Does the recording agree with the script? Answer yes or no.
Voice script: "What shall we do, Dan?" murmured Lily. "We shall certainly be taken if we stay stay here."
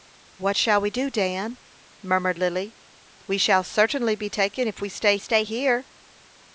yes